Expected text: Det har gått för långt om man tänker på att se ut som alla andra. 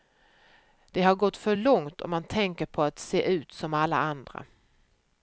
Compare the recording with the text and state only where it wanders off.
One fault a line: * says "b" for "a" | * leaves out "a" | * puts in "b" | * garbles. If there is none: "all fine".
all fine